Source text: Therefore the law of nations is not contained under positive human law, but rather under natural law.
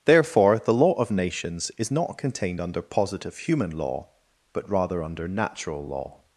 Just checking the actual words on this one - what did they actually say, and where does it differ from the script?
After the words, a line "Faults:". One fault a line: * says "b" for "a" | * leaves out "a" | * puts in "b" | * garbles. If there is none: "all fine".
Therefore the law of nations is not contained under positive human law, but rather under natural law.
Faults:
all fine